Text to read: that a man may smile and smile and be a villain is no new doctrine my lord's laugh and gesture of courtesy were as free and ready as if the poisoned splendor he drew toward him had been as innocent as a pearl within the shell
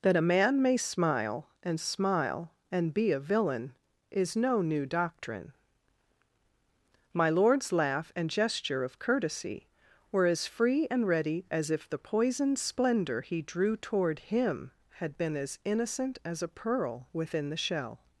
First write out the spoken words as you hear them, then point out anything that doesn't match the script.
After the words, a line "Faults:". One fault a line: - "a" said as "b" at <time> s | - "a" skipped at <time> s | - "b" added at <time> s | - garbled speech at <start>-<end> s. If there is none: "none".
that a man may smile and smile and be a villain is no new doctrine my lord's laugh and gesture of courtesy were as free and ready as if the poisoned splendor he drew toward him had been as innocent as a pearl within the shell
Faults:
none